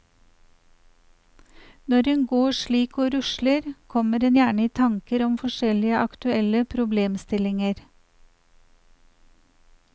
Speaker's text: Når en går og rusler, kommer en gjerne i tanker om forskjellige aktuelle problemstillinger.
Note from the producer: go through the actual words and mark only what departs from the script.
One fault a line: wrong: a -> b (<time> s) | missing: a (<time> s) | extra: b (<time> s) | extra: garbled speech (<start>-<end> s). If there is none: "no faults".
extra: slik (2.6 s)